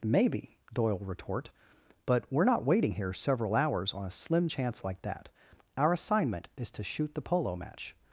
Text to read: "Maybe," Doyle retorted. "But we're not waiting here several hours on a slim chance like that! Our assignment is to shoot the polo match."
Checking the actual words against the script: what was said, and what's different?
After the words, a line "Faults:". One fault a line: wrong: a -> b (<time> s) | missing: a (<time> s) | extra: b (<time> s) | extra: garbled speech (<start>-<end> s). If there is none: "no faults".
"Maybe," Doyle retort. "But we're not waiting here several hours on a slim chance like that! Our assignment is to shoot the polo match."
Faults:
wrong: retorted -> retort (1.0 s)